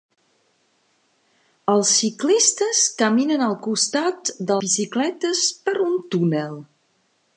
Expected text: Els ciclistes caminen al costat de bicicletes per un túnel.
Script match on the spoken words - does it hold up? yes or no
yes